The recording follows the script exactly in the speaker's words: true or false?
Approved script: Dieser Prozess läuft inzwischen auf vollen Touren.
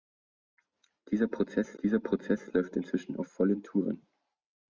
false